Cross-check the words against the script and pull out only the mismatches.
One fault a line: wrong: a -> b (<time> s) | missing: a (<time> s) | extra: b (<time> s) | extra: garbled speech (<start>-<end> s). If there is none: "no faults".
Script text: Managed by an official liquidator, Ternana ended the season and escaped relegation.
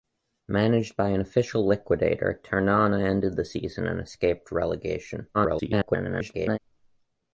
extra: garbled speech (5.3-6.6 s)